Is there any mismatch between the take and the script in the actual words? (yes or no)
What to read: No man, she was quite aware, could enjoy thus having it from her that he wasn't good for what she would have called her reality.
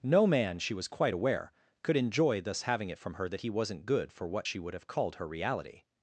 no